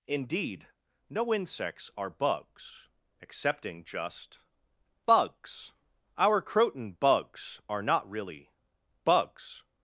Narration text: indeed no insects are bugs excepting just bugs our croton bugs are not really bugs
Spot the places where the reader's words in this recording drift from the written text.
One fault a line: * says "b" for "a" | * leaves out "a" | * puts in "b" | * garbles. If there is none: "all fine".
all fine